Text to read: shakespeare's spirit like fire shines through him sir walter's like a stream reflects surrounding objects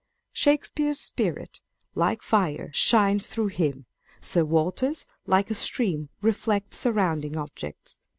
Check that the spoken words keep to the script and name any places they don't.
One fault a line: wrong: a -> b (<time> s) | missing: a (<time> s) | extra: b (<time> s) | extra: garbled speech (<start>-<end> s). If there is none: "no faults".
no faults